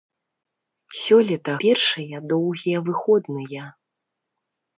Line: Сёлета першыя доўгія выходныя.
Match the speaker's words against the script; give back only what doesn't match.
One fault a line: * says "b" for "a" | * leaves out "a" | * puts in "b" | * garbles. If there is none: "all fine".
all fine